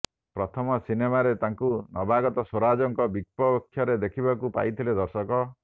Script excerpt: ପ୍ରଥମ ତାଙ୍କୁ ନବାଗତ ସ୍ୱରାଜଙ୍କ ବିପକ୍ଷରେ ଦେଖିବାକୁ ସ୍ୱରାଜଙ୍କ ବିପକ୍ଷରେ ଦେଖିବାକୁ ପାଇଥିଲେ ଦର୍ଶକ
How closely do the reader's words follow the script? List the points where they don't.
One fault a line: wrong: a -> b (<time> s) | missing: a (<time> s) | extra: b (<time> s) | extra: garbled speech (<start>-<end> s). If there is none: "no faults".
extra: ସିନେମାରେ (0.8 s)
missing: ସ୍ୱରାଜଙ୍କ ବିପକ୍ଷରେ ଦେଖିବାକୁ (4.5 s)